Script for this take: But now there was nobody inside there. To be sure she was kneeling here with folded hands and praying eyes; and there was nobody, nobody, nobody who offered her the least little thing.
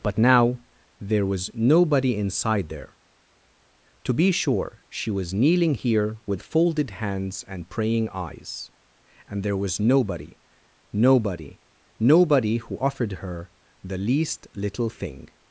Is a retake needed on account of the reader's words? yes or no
no